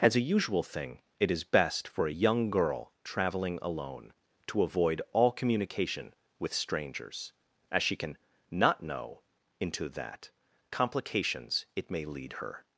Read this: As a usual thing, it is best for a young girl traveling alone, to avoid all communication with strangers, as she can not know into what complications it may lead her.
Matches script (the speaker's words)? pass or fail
fail